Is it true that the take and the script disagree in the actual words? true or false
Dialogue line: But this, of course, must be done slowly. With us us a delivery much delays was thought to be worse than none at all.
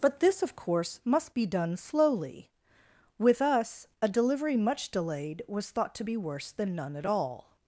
true